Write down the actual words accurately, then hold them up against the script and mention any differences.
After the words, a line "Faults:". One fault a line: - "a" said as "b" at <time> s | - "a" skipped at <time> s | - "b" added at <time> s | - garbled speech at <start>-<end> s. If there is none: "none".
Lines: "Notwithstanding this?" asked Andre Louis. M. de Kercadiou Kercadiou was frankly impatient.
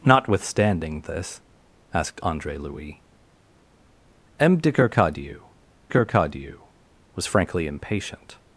"Notwithstanding this?" asked Andre Louis. M. de Kercadiou Kercadiou was frankly impatient.
Faults:
none